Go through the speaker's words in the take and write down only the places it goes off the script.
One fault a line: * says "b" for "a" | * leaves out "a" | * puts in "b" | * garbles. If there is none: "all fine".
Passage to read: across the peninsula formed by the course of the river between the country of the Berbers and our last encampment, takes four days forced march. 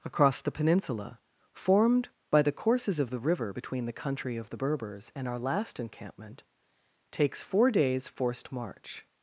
* says "courses" for "course"